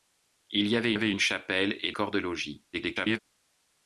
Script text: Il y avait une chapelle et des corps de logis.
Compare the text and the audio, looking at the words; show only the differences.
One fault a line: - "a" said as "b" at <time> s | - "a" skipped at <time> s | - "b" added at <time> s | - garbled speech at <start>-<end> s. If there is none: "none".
- "avait" added at 0.9 s
- "des" skipped at 1.9 s
- garbled speech at 2.7-3.2 s